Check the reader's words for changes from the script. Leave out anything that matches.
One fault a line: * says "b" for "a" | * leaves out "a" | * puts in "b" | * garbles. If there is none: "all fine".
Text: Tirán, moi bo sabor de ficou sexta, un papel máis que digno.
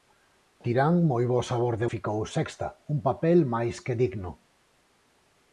all fine